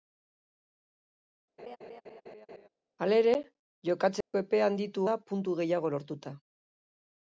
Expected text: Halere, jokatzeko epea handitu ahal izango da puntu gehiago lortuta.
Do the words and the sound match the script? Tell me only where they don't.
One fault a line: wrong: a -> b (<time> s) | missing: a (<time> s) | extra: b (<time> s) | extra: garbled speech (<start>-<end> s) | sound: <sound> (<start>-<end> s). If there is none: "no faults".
sound: laugh (1.6-2.7 s)
sound: dropout (4.2-4.3 s)
missing: ahal izango (5.1 s)